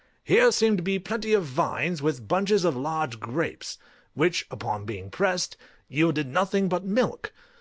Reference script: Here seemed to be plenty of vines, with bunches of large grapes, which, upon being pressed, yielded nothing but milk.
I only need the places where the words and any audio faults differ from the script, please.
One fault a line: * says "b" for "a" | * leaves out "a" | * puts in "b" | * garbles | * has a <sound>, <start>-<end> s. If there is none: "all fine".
all fine